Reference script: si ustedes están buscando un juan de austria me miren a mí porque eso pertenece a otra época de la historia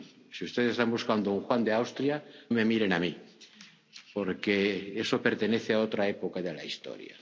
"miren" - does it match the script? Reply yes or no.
yes